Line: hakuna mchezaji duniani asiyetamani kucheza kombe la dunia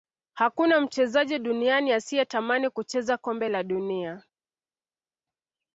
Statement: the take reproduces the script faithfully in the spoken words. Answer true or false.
true